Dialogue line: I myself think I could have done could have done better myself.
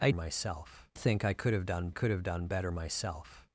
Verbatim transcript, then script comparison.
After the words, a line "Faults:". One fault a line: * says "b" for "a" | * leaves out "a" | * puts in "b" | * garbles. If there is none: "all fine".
I myself think I could have done could have done better myself.
Faults:
all fine